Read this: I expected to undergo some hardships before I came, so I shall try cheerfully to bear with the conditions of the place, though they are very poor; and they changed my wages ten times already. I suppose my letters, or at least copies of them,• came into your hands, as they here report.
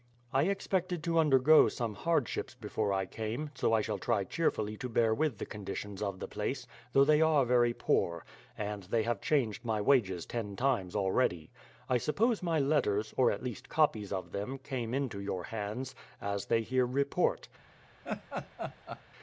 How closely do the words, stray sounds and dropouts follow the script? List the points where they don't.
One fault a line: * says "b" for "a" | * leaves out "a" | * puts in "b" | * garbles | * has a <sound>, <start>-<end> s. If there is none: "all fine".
* puts in "have"
* has a laugh, 18.0-19.0 s